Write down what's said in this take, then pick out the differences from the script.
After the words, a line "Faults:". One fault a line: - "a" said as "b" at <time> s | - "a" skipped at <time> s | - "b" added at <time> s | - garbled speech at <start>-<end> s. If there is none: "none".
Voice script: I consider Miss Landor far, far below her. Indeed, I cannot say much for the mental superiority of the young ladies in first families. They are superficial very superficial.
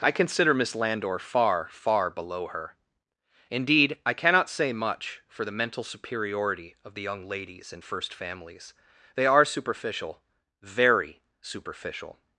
I consider Miss Landor far, far below her. Indeed, I cannot say much for the mental superiority of the young ladies in first families. They are superficial very superficial.
Faults:
none